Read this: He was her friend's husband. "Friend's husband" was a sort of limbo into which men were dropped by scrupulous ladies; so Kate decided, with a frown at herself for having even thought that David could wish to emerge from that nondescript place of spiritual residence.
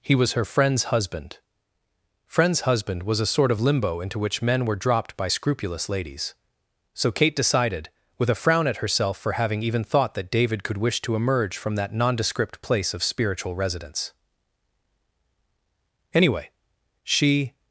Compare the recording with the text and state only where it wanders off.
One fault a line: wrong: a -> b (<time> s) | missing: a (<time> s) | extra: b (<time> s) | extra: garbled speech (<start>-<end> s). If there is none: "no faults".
extra: Anyway she (16.1 s)